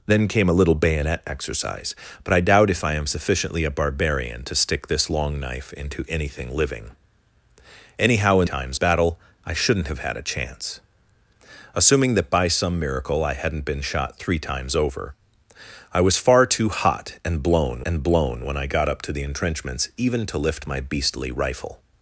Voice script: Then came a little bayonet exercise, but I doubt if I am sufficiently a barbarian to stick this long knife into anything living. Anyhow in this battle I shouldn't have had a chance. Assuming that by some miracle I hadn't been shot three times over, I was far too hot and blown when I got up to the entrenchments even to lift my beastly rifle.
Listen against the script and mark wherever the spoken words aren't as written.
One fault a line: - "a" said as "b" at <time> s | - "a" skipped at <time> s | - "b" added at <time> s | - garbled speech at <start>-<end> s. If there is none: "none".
- "this" said as "times" at 8.4 s
- "and blown" added at 17.8 s